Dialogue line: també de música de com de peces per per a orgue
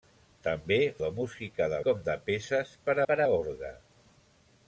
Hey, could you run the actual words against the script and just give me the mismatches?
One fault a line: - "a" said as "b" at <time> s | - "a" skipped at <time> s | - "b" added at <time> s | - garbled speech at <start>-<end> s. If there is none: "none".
none